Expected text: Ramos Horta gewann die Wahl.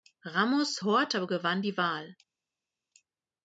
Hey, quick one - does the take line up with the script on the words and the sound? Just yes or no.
yes